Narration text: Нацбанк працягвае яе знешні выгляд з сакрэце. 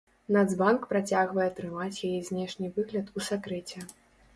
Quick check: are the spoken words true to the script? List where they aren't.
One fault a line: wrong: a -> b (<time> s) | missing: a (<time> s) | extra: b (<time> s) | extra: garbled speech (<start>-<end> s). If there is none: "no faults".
extra: трымаць (1.6 s)
wrong: з -> у (3.2 s)